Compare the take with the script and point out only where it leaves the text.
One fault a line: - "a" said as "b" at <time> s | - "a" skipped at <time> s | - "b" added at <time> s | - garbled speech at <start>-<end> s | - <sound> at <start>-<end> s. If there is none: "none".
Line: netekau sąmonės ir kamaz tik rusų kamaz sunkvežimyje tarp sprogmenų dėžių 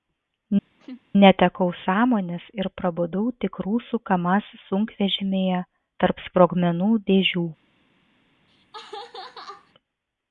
- laugh at 0.8-1.0 s
- "kamaz" said as "prabudau" at 2.8 s
- laugh at 8.5-9.7 s